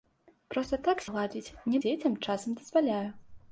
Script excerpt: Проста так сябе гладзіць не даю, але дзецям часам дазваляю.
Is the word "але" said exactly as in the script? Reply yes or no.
no